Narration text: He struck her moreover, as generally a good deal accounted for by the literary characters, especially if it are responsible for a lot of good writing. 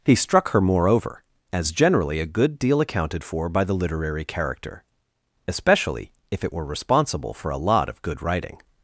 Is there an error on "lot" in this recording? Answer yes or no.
no